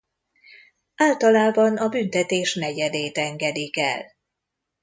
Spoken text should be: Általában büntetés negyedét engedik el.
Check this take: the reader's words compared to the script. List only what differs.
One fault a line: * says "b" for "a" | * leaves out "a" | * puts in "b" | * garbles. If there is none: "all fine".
* puts in "a"